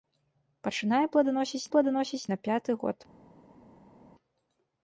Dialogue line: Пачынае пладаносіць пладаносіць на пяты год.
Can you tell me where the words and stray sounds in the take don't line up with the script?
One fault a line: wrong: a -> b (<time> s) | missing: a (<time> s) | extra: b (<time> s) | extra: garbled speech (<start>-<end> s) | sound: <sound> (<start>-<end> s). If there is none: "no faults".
no faults